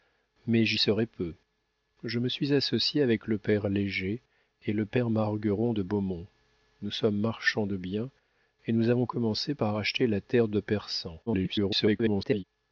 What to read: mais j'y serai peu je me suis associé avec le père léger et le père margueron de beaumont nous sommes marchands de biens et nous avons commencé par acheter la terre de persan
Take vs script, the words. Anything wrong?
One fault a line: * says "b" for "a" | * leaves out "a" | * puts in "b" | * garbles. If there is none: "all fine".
* garbles